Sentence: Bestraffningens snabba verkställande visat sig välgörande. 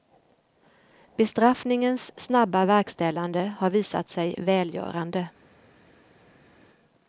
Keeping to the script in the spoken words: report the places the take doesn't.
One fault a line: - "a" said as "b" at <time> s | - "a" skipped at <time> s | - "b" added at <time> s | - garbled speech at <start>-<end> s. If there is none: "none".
- "har" added at 3.6 s